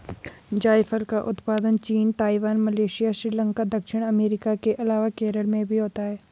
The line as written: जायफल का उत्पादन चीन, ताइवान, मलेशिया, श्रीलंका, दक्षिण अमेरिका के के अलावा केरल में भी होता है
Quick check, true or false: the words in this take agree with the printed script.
false